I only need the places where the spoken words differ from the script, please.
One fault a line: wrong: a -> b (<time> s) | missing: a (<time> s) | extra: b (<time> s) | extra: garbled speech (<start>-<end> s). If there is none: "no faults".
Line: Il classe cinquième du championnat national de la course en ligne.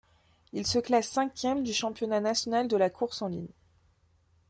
extra: se (0.7 s)